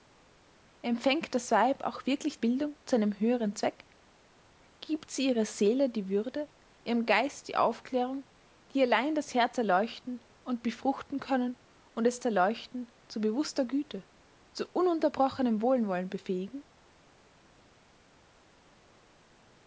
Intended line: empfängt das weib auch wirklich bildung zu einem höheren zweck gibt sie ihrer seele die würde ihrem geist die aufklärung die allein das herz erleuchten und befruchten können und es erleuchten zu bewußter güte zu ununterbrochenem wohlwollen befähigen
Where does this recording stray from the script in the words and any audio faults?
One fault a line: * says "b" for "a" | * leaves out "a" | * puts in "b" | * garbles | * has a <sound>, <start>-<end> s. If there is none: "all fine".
all fine